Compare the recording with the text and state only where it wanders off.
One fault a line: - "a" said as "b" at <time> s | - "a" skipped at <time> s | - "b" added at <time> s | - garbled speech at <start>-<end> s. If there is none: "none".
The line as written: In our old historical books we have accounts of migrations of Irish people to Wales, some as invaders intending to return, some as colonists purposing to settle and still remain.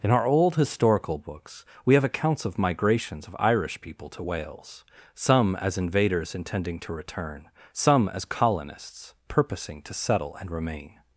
- "still" skipped at 10.5 s